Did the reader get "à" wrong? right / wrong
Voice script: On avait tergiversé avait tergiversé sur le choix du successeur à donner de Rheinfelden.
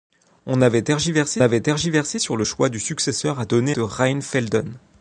right